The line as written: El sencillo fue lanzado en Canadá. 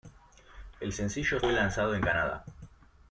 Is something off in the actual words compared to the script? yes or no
no